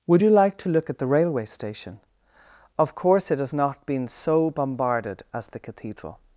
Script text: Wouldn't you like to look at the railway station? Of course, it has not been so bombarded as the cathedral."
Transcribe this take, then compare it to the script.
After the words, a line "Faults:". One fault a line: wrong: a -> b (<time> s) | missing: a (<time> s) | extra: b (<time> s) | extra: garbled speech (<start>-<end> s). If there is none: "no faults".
Would you like to look at the railway station? Of course, it has not been so bombarded as the cathedral."
Faults:
wrong: Wouldn't -> Would (0.1 s)